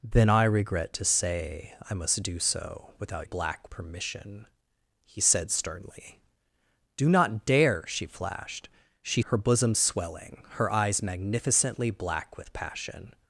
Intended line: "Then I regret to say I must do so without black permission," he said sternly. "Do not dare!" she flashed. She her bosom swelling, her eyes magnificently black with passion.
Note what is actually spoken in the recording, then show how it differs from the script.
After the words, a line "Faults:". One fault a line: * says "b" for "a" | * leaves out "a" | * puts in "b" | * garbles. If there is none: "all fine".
"Then I regret to say I must do so without black permission," he said sternly. "Do not dare!" she flashed. She her bosom swelling, her eyes magnificently black with passion.
Faults:
all fine